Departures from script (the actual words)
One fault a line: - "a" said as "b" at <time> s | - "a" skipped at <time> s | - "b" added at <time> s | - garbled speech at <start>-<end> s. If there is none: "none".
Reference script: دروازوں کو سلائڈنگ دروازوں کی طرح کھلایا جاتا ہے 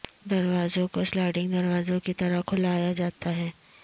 none